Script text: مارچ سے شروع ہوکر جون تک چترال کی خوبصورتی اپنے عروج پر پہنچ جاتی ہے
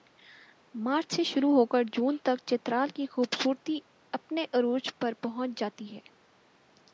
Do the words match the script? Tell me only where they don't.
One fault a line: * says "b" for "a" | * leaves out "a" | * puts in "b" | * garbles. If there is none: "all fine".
all fine